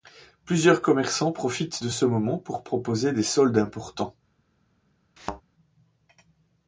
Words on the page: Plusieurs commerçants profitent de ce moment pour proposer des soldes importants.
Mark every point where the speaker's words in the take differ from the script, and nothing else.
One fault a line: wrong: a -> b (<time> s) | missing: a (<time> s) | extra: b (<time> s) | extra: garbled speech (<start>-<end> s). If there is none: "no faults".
no faults